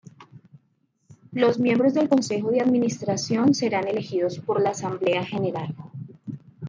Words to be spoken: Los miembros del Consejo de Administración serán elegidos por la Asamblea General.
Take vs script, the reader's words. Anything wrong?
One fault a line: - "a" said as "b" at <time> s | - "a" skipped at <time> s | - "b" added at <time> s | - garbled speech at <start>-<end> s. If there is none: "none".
none